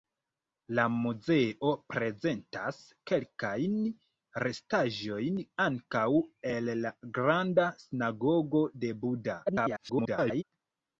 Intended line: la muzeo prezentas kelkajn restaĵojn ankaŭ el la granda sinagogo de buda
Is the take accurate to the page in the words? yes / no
no